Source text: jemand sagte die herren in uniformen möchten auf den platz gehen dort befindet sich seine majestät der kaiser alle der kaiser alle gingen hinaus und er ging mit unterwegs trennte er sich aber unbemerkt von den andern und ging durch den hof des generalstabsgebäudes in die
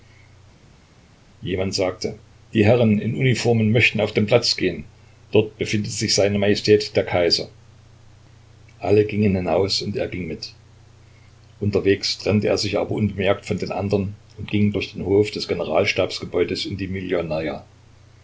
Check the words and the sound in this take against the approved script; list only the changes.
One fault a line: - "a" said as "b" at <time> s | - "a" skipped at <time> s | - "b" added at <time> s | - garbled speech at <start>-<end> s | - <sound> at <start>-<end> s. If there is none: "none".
- "der kaiser alle" skipped at 9.1 s